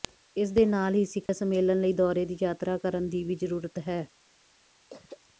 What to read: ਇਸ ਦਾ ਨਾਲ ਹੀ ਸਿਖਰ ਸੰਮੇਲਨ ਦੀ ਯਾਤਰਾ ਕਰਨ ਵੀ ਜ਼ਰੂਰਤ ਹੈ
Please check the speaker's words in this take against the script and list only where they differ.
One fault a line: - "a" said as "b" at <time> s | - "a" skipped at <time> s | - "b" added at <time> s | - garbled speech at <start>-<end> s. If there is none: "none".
- "ਦਾ" said as "ਦੇ" at 0.5 s
- "ਲਈ ਦੌਰੇ" added at 1.8 s
- "ਦੀ" added at 3.1 s